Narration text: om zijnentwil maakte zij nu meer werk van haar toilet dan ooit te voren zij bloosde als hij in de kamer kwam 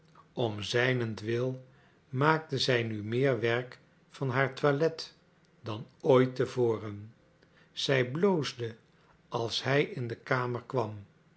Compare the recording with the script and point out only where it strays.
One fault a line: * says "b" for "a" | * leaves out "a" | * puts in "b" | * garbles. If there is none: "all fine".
all fine